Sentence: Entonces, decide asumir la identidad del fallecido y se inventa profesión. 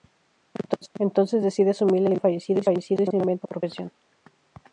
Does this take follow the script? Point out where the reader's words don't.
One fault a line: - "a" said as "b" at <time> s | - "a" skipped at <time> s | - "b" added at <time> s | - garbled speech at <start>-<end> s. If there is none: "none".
none